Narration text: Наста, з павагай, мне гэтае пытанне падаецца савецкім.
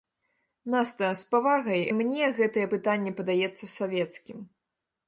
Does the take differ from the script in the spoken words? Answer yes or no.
no